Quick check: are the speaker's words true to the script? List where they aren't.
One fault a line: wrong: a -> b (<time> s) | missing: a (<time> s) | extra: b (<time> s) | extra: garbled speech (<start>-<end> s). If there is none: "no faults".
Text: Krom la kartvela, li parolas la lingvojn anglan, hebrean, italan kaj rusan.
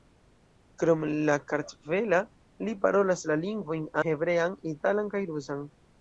missing: anglan (3.9 s)